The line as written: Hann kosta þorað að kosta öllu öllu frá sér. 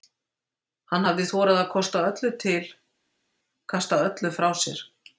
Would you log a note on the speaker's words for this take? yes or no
yes